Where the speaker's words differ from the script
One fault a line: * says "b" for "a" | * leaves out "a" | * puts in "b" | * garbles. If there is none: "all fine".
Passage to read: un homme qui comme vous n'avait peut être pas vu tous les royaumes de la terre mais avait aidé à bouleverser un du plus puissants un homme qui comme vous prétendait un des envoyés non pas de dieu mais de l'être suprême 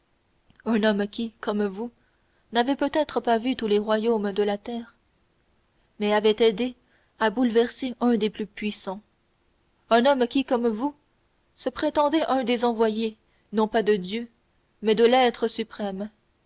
* says "des" for "du"
* puts in "se"